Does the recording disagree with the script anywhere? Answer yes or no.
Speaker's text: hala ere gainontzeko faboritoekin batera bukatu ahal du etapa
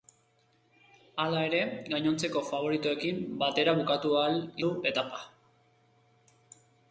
no